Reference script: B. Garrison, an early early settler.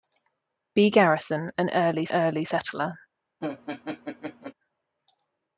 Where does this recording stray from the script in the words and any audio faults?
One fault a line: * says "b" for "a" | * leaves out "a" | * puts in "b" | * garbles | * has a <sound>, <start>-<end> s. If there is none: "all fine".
* has a laugh, 3.4-4.5 s